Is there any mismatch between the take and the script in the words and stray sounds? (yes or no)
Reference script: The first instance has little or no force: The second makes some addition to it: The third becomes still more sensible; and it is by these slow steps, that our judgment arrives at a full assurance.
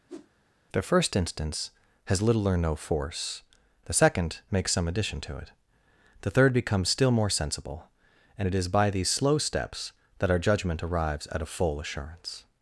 yes